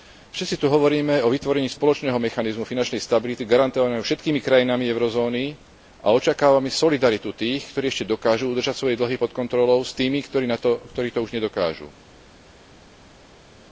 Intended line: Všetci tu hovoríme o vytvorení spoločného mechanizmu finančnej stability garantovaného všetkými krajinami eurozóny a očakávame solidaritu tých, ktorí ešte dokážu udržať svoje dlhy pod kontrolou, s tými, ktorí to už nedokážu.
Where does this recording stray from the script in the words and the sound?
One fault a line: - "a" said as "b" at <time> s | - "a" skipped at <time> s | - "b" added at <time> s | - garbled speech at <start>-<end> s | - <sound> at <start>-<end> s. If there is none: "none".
none